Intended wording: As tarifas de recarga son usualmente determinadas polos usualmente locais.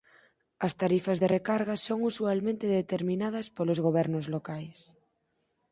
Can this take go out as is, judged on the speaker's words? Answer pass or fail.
fail